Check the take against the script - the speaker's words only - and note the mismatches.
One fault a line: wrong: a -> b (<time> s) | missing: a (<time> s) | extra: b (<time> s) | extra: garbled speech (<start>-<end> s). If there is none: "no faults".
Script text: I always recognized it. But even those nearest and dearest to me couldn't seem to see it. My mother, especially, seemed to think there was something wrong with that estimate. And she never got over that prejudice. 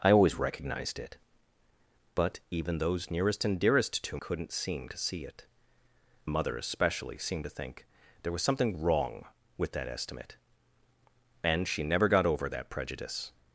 missing: me (4.2 s)
missing: My (5.5 s)